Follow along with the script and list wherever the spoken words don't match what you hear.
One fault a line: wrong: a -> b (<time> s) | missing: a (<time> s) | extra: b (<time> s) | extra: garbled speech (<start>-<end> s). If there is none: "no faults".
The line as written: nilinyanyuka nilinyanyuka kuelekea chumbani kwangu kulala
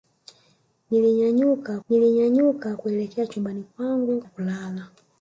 no faults